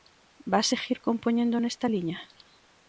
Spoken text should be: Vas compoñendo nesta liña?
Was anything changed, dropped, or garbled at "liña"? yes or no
no